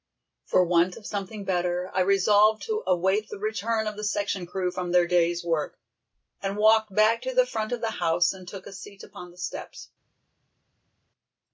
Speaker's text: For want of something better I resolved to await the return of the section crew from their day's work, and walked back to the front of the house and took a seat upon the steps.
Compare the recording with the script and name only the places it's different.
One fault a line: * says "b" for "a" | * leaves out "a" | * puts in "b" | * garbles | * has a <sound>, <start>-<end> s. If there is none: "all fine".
all fine